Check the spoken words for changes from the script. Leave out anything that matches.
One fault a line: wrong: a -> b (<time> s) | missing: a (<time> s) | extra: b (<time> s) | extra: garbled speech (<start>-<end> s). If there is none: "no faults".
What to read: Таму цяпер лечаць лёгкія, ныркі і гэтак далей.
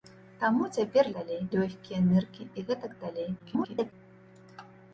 wrong: лечаць -> далей (1.2 s)
extra: garbled speech (3.4-3.9 s)